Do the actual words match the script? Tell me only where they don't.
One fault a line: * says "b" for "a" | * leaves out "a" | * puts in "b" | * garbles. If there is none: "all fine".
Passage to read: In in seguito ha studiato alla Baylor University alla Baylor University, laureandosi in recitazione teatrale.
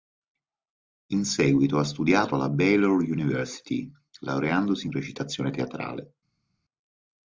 * leaves out "in"
* leaves out "alla Baylor University"